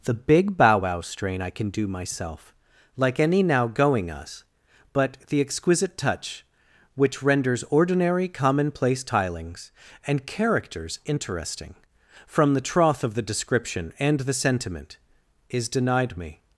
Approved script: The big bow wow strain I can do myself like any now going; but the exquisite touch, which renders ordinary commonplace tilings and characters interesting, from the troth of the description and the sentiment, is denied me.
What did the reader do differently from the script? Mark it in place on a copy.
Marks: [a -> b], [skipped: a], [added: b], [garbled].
The big bow wow strain I can do myself like any now going; [added: us] but the exquisite touch, which renders ordinary commonplace tilings and characters interesting, from the troth of the description and the sentiment, is denied me.